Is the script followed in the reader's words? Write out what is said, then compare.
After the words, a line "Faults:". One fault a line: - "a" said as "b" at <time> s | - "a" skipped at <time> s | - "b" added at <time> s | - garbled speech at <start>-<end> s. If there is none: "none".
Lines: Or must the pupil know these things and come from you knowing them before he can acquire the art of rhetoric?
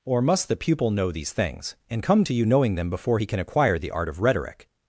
Or must the pupil know these things and come to you knowing them before he can acquire the art of rhetoric?
Faults:
- "from" said as "to" at 2.2 s